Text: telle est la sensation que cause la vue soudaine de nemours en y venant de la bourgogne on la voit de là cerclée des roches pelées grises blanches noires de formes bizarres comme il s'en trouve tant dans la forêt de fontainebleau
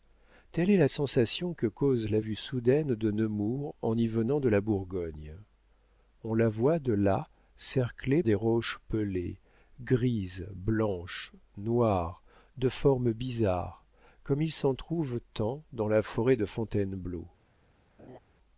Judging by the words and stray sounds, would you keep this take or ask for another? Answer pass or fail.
fail